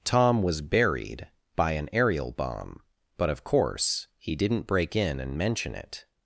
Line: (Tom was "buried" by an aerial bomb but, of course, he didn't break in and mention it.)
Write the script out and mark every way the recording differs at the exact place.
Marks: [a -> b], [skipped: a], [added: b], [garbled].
(Tom was "buried" by an aerial bomb but, of course, he didn't break in and mention it.)